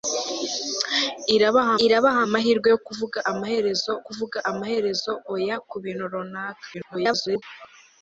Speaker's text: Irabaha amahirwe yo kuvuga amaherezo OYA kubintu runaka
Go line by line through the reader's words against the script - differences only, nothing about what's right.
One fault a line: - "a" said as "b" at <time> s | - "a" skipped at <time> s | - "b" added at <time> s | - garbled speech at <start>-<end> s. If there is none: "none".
- "irabaha" added at 1.9 s
- "kuvuga amaherezo" added at 4.0 s
- garbled speech at 6.7-7.4 s